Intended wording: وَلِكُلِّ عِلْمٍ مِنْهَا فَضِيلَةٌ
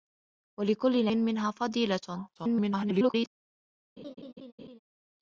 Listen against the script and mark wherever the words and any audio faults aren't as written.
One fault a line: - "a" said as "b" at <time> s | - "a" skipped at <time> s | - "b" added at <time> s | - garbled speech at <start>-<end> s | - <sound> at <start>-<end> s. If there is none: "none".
- "عِلْمٍ" skipped at 1.1 s
- garbled speech at 2.4-3.3 s
- laugh at 4.0-4.8 s